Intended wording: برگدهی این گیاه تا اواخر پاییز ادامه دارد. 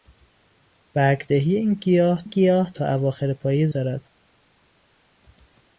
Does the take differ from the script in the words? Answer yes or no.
yes